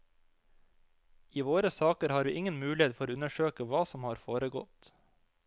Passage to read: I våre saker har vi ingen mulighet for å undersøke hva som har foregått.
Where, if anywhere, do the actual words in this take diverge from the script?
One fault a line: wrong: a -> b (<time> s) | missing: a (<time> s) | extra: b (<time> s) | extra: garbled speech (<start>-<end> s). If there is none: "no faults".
no faults